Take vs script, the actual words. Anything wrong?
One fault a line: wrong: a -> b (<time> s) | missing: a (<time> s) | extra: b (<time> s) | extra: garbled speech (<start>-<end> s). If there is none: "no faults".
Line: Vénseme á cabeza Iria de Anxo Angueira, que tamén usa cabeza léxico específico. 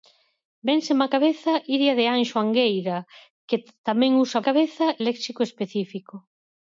no faults